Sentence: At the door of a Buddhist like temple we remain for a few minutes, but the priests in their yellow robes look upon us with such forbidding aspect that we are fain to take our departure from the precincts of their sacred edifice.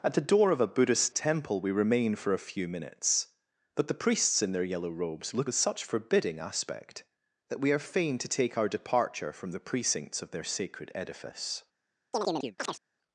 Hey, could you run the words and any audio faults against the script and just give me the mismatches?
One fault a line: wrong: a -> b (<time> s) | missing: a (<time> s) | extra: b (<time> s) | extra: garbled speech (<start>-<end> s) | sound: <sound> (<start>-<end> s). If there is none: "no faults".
missing: like (1.1 s)
missing: upon us (5.5 s)
sound: chirp (12.1-12.8 s)